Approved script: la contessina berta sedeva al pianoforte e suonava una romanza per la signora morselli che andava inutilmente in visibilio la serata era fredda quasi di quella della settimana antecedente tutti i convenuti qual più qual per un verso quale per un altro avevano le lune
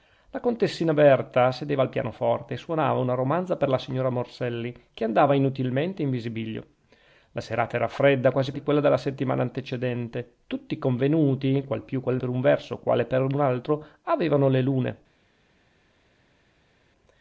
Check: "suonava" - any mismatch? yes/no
no